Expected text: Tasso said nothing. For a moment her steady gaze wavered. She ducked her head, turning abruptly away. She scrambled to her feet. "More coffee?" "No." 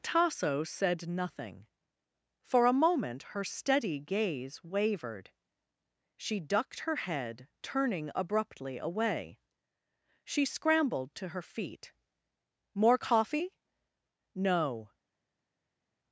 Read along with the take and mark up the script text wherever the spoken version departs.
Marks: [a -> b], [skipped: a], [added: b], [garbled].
Tasso said nothing. For a moment her steady gaze wavered. She ducked her head, turning abruptly away. She scrambled to her feet. "More coffee?" "No."